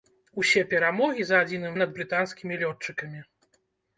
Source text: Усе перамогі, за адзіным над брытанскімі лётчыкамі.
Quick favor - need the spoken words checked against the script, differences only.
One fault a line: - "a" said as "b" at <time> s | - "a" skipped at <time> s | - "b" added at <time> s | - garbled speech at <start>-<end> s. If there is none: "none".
none